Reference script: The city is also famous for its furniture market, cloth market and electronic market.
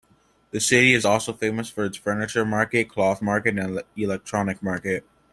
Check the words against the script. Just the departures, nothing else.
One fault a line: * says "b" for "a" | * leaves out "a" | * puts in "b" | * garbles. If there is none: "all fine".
all fine